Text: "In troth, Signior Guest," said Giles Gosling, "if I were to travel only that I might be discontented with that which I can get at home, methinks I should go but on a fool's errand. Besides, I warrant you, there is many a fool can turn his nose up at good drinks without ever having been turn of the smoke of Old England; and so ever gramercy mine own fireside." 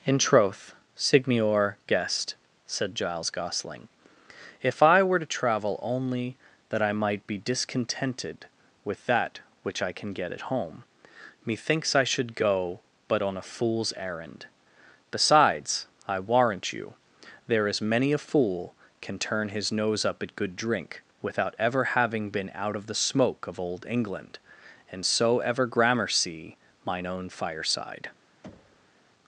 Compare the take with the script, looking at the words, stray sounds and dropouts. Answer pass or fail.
fail